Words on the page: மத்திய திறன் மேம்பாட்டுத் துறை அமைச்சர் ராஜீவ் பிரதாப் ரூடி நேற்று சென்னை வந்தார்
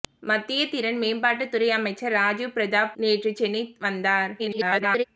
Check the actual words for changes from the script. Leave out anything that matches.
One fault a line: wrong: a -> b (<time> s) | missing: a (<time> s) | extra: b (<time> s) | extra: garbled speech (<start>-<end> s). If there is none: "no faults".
missing: ரூடி (3.0 s)
extra: garbled speech (4.4-5.0 s)